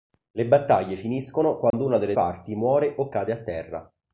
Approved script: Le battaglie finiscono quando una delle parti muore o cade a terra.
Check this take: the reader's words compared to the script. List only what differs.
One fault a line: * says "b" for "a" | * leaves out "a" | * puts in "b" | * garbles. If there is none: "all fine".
all fine